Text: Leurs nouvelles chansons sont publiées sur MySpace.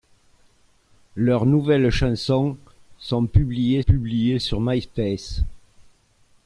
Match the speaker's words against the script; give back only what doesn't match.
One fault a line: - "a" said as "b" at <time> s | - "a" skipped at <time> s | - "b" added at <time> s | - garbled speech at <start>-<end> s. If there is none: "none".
- "publiées" added at 3.8 s